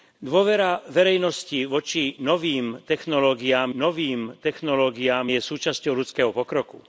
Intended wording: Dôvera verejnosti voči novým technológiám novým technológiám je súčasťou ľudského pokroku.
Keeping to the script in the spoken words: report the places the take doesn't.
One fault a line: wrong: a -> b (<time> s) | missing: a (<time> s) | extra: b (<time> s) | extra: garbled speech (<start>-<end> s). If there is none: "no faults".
no faults